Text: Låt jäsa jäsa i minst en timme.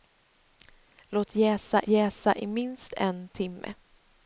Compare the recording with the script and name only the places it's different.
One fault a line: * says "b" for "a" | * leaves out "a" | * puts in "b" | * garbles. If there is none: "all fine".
all fine